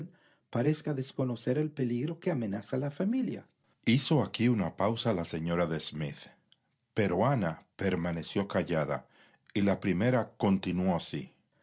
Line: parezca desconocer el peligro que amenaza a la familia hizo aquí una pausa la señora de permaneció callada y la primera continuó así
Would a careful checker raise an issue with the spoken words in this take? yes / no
yes